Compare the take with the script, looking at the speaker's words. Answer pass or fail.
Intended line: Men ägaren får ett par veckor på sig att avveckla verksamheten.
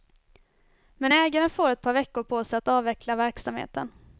pass